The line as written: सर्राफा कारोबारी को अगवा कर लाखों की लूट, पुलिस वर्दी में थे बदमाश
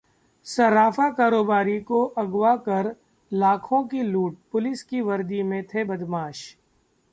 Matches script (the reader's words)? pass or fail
fail